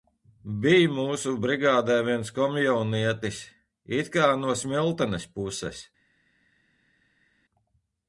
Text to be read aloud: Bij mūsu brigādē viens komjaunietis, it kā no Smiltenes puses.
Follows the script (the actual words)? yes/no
yes